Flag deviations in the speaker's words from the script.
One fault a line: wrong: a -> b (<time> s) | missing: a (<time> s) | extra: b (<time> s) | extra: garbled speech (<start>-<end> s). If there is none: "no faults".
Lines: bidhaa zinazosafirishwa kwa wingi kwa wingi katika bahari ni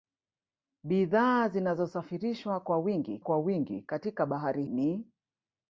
no faults